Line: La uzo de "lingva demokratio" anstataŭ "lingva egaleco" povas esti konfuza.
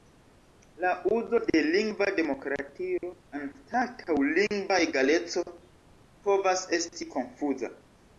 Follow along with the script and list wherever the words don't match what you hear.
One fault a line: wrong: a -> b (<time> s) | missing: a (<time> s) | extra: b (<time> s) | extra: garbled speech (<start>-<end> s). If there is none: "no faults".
no faults